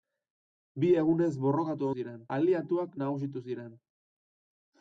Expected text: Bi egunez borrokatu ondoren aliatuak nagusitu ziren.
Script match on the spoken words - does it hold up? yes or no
no